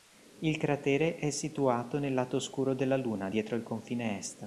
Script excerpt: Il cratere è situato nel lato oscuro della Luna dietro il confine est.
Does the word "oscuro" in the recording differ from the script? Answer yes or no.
no